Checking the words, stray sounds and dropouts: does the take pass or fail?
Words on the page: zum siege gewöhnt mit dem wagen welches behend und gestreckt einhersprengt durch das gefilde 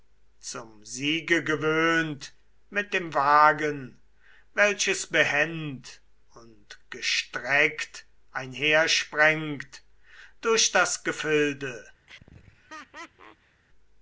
fail